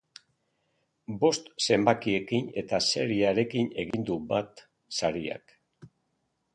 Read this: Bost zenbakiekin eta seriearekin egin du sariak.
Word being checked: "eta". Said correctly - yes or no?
yes